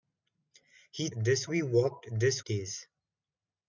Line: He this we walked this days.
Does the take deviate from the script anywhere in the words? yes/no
no